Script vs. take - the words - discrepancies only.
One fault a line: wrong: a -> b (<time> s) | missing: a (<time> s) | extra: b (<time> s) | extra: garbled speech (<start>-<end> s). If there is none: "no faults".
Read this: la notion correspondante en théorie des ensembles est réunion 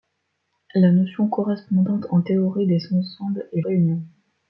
no faults